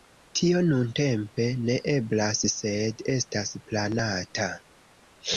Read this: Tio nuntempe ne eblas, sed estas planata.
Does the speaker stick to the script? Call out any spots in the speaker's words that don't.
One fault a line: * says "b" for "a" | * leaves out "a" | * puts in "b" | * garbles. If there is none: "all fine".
all fine